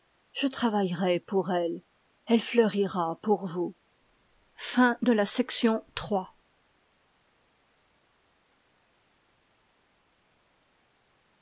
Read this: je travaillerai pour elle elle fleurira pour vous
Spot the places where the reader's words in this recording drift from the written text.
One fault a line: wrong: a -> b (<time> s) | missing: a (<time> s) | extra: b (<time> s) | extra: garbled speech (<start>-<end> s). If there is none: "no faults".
no faults